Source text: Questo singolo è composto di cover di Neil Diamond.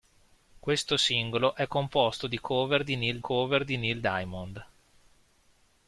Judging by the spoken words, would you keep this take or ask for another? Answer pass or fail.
fail